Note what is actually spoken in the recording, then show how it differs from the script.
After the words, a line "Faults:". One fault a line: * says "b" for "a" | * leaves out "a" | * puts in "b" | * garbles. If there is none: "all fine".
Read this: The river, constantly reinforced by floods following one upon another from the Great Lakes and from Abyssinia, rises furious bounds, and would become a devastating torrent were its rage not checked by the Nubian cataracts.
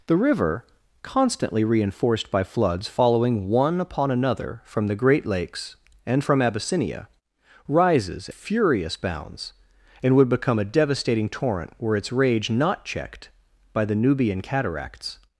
The river, constantly reinforced by floods following one upon another from the Great Lakes and from Abyssinia, rises furious bounds, and would become a devastating torrent were its rage not checked by the Nubian cataracts.
Faults:
all fine